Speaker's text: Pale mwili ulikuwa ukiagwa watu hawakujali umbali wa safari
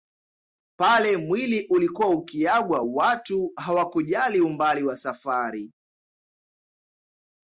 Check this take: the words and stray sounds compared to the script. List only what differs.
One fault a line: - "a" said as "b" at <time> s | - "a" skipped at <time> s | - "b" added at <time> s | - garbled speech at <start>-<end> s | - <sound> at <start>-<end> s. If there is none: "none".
none